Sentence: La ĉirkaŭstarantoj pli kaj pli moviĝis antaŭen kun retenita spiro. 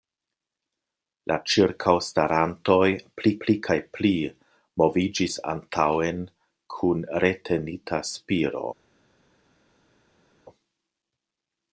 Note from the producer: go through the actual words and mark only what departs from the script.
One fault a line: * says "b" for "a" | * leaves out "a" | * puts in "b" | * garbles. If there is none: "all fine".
* puts in "pli"